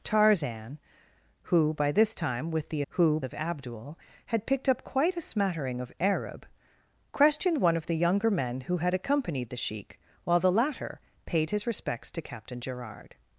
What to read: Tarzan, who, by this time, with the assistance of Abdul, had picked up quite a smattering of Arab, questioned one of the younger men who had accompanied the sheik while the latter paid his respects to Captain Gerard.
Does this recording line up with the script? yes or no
no